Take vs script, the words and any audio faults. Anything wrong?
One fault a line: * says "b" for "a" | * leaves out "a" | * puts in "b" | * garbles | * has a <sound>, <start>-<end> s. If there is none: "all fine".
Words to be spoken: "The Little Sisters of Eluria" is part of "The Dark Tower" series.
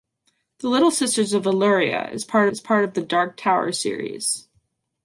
* puts in "is part"